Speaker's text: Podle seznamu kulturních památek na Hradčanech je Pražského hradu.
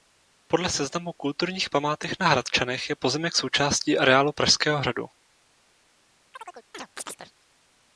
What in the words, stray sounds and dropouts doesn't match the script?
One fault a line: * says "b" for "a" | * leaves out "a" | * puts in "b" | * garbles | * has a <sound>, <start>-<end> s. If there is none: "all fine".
* puts in "pozemek součástí areálu"
* has a chirp, 6.3-7.3 s